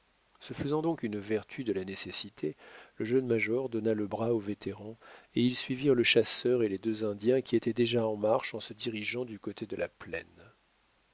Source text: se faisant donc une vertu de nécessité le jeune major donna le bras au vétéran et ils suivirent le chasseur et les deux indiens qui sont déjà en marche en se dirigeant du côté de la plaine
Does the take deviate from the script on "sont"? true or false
true